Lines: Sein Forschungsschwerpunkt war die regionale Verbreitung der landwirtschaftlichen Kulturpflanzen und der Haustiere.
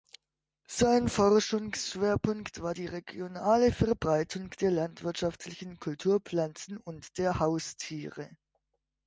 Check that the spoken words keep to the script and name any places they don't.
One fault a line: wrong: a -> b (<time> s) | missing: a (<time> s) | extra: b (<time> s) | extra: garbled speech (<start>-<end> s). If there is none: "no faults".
no faults